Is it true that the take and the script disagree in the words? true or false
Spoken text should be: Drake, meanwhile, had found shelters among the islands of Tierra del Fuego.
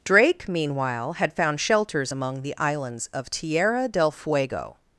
false